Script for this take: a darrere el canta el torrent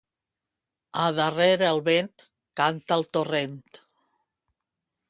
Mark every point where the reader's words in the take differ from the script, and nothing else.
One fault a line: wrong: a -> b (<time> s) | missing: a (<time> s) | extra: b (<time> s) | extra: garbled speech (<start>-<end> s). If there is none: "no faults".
extra: vent (1.9 s)